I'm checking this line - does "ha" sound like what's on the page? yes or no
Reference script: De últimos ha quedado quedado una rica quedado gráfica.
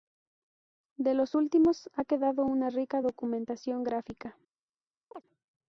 yes